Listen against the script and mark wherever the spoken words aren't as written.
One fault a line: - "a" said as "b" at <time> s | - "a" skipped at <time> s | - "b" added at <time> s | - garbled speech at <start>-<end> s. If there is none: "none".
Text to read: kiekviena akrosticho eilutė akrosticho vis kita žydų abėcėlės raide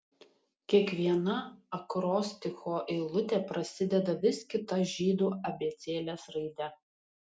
- "akrosticho" said as "prasideda" at 3.5 s